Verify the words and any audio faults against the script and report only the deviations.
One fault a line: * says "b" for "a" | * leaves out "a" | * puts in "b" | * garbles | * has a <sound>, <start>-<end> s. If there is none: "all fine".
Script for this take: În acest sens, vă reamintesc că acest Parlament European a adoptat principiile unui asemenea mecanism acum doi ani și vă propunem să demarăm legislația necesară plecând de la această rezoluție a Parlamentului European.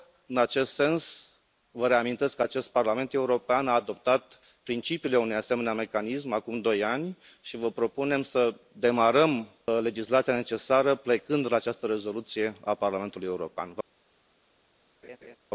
* has a laugh, 15.0-15.4 s